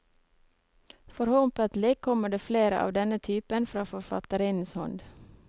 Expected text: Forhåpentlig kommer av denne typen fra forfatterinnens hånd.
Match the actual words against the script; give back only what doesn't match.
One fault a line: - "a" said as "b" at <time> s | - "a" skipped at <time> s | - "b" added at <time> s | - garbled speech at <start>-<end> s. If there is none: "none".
- "det flere" added at 2.3 s